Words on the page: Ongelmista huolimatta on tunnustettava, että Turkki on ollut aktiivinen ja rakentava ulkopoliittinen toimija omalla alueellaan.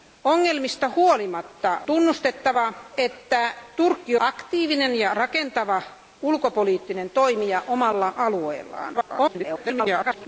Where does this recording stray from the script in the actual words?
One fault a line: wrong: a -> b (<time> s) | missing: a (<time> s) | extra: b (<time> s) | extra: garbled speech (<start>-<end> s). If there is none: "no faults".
missing: on (1.8 s)
missing: on ollut (4.2 s)
extra: garbled speech (8.9-10.3 s)